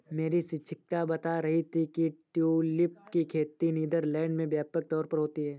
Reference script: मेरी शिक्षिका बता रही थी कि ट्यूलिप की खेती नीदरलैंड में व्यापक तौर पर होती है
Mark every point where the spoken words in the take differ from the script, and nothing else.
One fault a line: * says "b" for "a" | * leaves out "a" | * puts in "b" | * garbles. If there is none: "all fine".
all fine